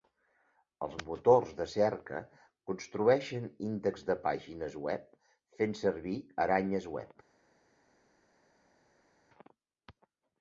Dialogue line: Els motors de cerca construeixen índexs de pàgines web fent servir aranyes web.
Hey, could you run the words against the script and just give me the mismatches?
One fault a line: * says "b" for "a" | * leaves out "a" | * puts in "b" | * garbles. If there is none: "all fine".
all fine